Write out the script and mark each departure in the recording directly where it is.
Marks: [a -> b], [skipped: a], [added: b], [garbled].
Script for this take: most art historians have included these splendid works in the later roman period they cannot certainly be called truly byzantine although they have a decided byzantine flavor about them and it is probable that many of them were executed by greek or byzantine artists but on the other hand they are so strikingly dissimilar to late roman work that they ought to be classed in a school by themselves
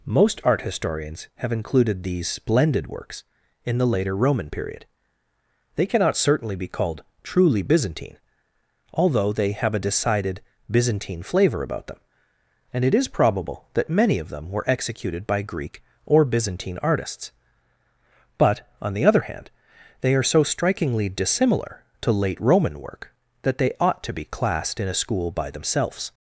most art historians have included these splendid works in the later roman period they cannot certainly be called truly byzantine although they have a decided byzantine flavor about them and it is probable that many of them were executed by greek or byzantine artists but on the other hand they are so strikingly dissimilar to late roman work that they ought to be classed in a school by themselves